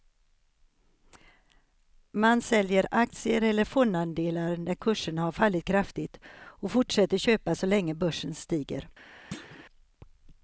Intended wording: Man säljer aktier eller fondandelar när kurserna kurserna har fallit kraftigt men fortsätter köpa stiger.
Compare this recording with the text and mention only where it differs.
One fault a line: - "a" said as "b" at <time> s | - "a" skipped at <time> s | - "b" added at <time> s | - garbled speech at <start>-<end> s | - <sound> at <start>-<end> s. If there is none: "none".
- "kurserna" skipped at 5.2 s
- "men" said as "och" at 6.3 s
- "så länge börsen" added at 7.5 s
- thud at 9.3-9.6 s